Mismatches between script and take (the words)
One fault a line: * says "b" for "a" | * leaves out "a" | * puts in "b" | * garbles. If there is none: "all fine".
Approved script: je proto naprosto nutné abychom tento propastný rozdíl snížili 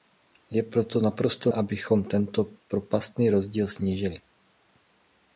* leaves out "nutné"